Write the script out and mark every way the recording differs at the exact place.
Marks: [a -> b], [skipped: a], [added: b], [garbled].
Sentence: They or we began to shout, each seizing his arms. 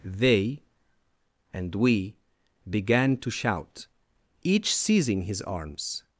They [or -> and] we began to shout, each seizing his arms.